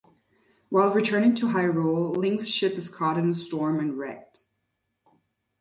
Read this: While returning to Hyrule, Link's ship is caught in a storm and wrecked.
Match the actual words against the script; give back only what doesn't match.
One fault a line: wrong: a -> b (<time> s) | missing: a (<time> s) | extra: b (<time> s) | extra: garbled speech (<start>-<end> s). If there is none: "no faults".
no faults